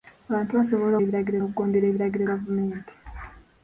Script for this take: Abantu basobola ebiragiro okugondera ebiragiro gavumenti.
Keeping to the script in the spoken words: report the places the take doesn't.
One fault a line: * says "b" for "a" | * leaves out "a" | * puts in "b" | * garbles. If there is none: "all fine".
all fine